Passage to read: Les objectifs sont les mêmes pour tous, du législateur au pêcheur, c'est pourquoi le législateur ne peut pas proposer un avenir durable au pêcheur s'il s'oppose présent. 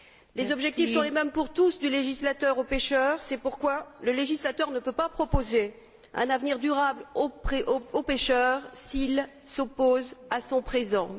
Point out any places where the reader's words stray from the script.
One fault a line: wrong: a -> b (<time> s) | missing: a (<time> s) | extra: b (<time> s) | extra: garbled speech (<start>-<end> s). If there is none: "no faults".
extra: à son (10.3 s)